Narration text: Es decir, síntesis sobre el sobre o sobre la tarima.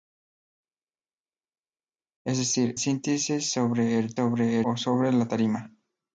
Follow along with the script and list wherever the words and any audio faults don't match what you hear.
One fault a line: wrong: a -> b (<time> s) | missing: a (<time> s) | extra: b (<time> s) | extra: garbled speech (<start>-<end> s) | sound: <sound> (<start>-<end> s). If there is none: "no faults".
no faults